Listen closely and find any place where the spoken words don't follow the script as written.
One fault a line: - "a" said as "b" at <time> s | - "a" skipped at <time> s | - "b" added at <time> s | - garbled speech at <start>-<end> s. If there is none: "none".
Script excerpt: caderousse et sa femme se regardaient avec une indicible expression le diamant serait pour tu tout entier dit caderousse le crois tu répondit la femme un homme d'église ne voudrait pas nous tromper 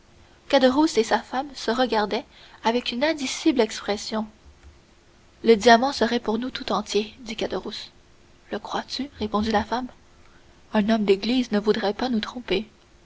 - "tu" said as "nous" at 6.4 s